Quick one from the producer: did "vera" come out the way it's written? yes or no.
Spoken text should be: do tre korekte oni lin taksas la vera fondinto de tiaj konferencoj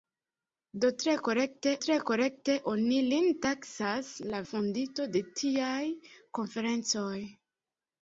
no